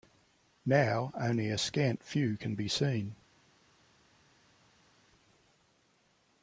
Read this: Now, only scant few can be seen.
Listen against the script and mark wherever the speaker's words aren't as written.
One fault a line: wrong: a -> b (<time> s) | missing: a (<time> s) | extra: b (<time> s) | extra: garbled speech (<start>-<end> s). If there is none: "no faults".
extra: a (1.5 s)